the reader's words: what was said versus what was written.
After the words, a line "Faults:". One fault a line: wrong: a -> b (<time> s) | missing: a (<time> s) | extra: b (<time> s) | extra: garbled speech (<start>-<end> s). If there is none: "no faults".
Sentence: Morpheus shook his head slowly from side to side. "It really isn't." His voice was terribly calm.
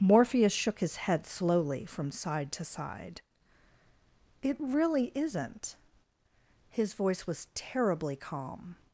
Morpheus shook his head slowly from side to side. "It really isn't." His voice was terribly calm.
Faults:
no faults